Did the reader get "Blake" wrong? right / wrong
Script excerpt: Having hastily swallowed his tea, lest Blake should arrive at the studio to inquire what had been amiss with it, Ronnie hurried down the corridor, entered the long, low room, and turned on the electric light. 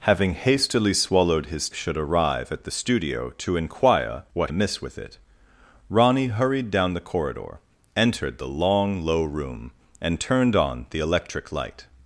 wrong